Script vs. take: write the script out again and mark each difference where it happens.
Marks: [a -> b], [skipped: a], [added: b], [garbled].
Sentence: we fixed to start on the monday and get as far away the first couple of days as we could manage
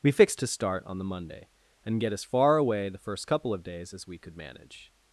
we fixed to start on the monday and get as far away the first couple of days as we could manage